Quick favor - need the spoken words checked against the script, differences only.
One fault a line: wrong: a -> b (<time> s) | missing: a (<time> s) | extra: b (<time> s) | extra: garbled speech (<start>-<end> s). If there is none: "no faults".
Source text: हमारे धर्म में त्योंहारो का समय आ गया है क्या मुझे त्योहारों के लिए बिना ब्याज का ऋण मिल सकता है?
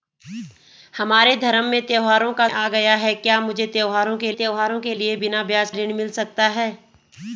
missing: समय (2.5 s)
extra: त्योहारों के (4.3 s)
missing: का (5.7 s)